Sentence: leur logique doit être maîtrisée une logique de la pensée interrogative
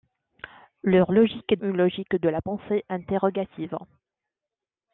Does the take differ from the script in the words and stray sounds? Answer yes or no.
yes